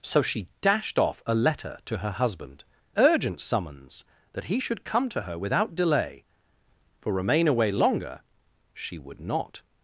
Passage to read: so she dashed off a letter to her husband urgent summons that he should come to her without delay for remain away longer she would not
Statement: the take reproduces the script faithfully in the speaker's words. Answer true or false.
true